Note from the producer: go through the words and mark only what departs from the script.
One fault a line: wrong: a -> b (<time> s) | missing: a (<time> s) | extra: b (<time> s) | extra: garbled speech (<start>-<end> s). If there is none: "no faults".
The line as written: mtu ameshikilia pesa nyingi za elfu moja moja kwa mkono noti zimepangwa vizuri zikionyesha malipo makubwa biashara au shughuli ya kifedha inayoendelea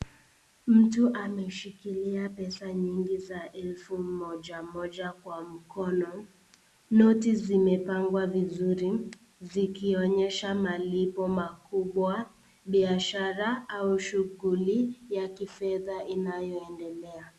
no faults